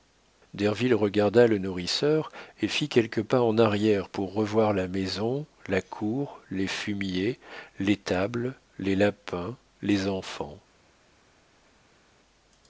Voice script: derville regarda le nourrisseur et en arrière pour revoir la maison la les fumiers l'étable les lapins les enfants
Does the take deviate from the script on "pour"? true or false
false